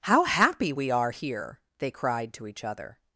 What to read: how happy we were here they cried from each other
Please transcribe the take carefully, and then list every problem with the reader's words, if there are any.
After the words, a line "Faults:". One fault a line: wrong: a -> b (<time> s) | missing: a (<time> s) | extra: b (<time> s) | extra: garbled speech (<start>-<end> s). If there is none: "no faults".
how happy we are here they cried to each other
Faults:
wrong: were -> are (0.9 s)
wrong: from -> to (2.3 s)